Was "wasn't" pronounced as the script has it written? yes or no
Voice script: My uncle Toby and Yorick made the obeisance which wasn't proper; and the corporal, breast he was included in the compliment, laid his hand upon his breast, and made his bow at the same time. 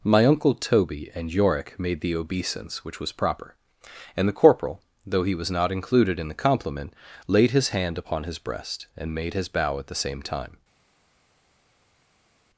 no